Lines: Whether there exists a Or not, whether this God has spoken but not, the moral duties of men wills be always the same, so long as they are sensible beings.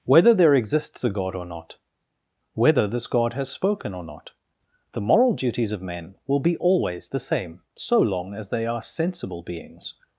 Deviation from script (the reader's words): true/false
true